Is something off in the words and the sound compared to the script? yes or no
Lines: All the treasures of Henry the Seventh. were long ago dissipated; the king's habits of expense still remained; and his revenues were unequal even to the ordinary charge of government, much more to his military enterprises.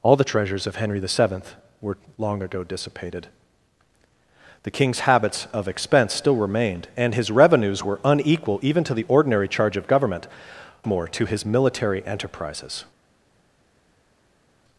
yes